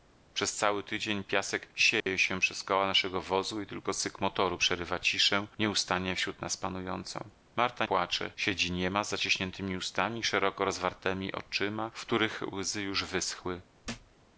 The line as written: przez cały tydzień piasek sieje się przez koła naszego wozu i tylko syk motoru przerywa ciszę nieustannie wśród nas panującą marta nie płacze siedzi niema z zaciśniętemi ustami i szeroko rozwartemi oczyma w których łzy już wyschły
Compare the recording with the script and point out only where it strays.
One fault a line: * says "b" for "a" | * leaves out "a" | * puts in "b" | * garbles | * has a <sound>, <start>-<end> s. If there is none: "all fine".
* has a dropout, 2.0-2.1 s
* leaves out "nie"
* has a thud, 13.8-14.2 s